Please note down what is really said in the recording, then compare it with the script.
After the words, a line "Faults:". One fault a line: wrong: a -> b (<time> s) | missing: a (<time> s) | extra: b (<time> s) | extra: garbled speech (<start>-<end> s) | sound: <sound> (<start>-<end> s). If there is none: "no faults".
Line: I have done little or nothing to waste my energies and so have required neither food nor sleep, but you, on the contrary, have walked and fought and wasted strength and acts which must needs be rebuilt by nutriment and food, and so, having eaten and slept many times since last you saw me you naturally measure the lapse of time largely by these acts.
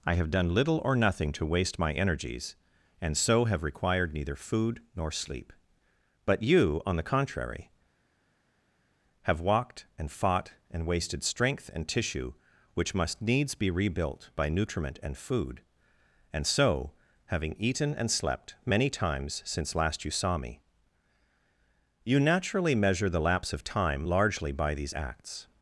I have done little or nothing to waste my energies and so have required neither food nor sleep, but you, on the contrary, have walked and fought and wasted strength and tissue which must needs be rebuilt by nutriment and food, and so, having eaten and slept many times since last you saw me you naturally measure the lapse of time largely by these acts.
Faults:
wrong: acts -> tissue (11.9 s)